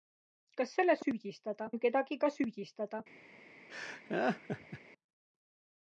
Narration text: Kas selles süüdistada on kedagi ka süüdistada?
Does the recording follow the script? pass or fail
pass